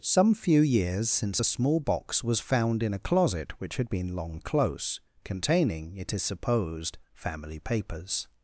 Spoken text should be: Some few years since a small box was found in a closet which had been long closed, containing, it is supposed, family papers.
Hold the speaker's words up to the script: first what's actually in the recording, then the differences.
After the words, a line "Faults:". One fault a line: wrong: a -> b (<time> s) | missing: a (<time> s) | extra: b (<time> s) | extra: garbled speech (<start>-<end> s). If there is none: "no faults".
Some few years since a small box was found in a closet which had been long close, containing, it is supposed, family papers.
Faults:
wrong: closed -> close (4.4 s)